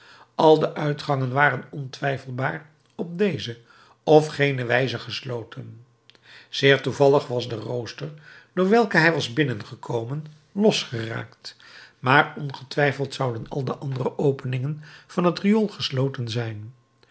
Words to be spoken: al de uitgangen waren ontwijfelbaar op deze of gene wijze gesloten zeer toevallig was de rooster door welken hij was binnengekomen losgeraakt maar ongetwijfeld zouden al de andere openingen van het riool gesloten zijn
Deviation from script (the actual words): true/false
false